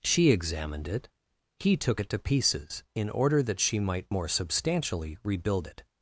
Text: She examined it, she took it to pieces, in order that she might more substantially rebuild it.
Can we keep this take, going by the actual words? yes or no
no